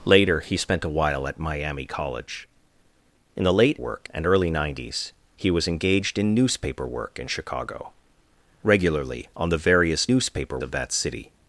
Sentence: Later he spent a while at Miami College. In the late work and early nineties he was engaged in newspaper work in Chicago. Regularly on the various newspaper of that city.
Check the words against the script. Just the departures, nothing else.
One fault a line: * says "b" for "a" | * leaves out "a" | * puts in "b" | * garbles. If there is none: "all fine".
all fine